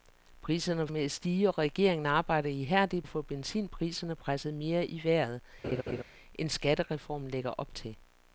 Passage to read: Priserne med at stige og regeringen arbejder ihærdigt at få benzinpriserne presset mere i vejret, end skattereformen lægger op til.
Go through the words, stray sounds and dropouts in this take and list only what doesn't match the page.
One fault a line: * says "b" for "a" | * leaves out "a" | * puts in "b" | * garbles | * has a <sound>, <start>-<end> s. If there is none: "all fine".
* has a laugh, 5.6-6.0 s